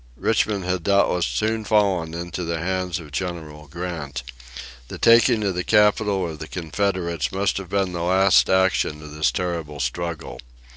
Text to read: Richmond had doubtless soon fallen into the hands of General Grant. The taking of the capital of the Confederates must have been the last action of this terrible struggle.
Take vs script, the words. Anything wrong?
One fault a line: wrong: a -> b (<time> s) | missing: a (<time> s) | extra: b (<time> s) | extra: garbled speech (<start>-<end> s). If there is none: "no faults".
no faults